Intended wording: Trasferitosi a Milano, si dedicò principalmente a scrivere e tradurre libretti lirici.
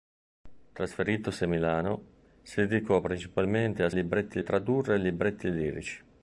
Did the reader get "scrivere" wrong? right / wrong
wrong